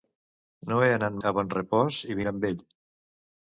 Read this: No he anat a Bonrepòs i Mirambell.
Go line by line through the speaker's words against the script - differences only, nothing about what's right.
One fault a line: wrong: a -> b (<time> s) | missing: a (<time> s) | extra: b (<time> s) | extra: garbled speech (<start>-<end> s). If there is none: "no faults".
no faults